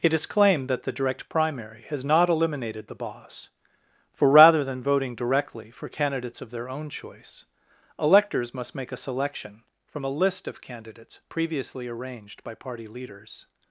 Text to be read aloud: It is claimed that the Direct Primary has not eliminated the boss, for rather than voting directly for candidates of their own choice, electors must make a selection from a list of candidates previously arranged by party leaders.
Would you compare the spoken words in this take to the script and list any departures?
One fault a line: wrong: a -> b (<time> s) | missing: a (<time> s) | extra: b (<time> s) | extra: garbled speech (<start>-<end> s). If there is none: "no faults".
no faults